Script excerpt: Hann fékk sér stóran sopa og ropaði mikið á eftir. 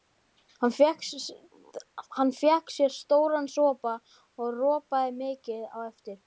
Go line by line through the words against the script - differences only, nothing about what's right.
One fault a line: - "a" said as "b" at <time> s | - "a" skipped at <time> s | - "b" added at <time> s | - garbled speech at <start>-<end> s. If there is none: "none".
none